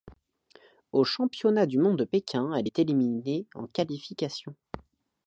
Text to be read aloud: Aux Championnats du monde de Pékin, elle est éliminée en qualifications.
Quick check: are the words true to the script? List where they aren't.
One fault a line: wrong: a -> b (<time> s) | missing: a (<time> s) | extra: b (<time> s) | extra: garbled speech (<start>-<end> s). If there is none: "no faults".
no faults